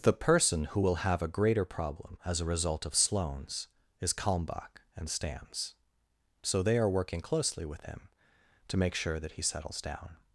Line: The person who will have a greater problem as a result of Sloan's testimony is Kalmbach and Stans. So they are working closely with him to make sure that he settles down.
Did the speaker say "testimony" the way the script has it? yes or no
no